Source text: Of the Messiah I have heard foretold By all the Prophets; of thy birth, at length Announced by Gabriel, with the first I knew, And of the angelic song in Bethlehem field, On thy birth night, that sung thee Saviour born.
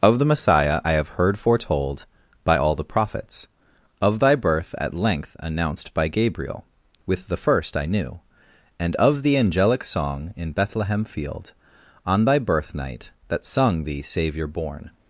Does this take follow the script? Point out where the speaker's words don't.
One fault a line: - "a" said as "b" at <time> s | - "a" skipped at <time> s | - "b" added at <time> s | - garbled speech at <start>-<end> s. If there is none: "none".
none